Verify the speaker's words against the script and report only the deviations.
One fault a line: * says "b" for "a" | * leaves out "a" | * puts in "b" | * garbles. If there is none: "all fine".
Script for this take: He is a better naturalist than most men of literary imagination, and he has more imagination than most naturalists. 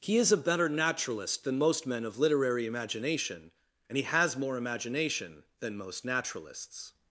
all fine